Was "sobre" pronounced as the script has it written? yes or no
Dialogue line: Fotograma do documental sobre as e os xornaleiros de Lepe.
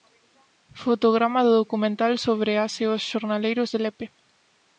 yes